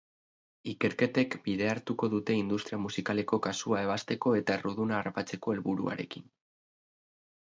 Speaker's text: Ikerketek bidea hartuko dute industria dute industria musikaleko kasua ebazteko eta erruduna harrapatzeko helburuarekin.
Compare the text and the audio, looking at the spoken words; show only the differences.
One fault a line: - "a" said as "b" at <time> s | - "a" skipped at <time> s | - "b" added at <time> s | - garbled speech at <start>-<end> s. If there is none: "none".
- "dute industria" skipped at 2.8 s